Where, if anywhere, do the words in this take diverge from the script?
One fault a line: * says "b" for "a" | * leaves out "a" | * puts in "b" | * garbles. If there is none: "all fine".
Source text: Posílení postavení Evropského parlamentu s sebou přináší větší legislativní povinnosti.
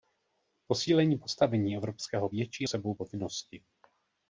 * says "větší" for "parlamentu"
* leaves out "přináší větší legislativní"